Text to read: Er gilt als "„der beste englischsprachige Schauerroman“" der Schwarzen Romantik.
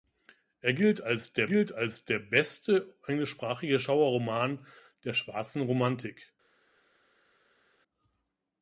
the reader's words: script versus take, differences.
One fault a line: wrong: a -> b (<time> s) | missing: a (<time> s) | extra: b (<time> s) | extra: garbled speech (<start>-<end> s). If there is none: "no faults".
extra: gilt als der (1.4 s)